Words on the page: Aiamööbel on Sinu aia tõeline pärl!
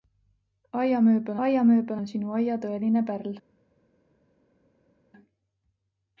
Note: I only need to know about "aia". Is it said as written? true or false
true